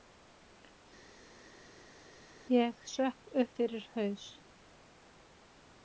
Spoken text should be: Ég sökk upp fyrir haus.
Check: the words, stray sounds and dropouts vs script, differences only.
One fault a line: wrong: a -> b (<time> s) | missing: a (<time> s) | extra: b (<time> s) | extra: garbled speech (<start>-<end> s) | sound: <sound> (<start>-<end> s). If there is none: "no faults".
no faults